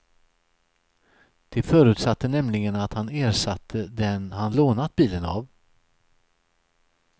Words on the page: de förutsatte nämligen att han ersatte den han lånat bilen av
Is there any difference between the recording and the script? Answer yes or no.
no